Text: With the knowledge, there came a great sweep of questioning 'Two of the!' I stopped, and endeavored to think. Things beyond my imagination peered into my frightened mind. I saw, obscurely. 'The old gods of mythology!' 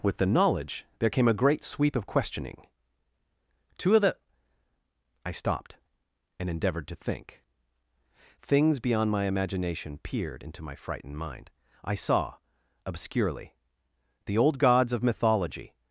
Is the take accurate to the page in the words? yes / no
yes